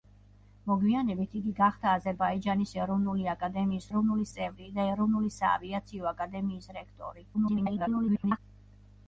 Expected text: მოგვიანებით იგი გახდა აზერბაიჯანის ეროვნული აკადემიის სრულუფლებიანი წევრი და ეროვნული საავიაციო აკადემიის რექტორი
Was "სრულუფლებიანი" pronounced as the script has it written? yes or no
no